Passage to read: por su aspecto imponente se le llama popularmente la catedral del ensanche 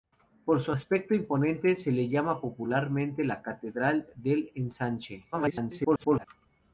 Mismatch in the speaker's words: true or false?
true